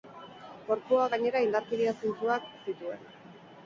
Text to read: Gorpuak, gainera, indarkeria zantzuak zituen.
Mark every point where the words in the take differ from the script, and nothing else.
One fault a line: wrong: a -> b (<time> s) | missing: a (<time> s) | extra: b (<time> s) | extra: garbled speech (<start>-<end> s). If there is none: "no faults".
no faults